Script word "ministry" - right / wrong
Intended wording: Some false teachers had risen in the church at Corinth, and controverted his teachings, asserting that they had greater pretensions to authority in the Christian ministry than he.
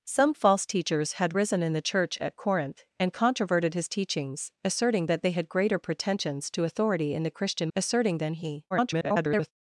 wrong